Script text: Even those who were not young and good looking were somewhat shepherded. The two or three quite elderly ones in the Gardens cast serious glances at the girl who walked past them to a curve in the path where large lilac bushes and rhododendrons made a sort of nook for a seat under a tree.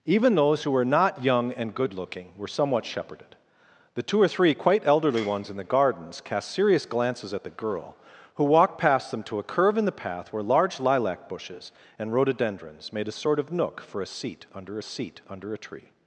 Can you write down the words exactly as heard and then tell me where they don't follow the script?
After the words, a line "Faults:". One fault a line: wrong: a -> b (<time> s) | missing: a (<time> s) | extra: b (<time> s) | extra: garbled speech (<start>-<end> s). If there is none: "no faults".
Even those who were not young and good looking were somewhat shepherded. The two or three quite elderly ones in the Gardens cast serious glances at the girl who walked past them to a curve in the path where large lilac bushes and rhododendrons made a sort of nook for a seat under seat under a tree.
Faults:
extra: seat under (14.8 s)